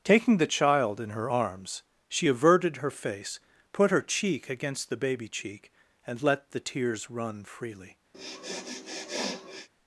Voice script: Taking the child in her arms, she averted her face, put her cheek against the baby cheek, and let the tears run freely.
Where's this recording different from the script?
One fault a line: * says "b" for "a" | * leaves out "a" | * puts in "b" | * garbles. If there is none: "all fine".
all fine